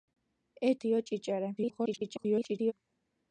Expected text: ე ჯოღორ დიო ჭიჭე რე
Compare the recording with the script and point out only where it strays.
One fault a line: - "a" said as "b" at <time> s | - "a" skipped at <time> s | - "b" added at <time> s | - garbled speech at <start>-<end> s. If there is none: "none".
- "ჯოღორ" skipped at 0.7 s
- garbled speech at 1.6-2.7 s